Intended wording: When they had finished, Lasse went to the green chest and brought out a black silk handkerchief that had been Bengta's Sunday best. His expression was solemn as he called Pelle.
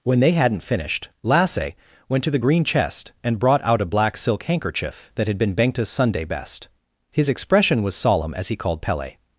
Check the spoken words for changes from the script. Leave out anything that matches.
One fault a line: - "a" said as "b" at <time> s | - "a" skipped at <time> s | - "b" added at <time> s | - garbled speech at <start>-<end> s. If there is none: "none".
- "had" said as "hadn't" at 0.3 s